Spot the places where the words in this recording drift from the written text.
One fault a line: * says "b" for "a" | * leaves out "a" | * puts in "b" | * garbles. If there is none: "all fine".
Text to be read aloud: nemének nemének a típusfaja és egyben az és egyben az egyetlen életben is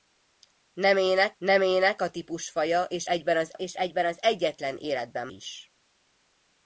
all fine